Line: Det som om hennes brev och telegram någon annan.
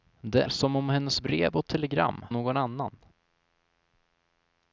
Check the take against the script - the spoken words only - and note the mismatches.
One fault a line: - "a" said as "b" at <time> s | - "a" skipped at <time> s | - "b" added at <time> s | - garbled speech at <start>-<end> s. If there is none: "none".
none